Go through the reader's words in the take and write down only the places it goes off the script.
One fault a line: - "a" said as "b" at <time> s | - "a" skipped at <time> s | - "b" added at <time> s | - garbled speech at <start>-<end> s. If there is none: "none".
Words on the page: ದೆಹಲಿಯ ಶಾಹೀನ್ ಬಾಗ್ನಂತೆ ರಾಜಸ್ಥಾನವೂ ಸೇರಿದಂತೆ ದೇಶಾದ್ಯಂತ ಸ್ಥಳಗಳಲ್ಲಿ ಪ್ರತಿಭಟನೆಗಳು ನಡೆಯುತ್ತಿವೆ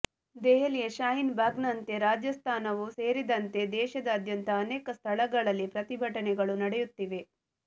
- "ಅನೇಕ" added at 4.6 s